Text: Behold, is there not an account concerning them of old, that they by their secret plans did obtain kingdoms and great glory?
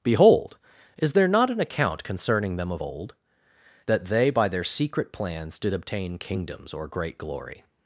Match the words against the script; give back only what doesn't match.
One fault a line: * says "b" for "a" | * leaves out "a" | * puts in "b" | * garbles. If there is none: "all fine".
* says "or" for "and"